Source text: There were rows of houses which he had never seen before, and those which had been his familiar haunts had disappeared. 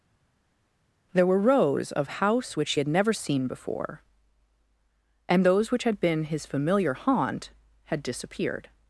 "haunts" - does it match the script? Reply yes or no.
no